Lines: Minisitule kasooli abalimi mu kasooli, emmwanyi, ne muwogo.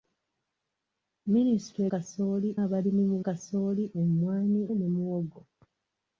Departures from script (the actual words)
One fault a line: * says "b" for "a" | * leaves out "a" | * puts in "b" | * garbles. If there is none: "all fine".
all fine